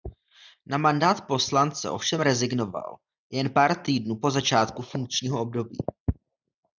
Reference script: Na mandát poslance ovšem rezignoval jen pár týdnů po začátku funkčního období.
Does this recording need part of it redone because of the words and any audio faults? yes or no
no